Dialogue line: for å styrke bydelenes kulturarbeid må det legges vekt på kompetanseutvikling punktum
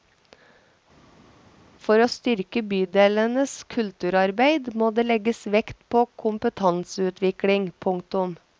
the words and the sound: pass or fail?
pass